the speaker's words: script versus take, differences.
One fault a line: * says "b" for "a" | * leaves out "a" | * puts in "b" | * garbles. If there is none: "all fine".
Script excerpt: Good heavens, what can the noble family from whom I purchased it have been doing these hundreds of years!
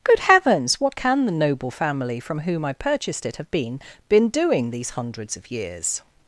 * puts in "been"